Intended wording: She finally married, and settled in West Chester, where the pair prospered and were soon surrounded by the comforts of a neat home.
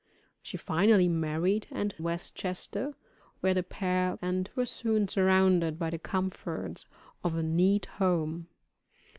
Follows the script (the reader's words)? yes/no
no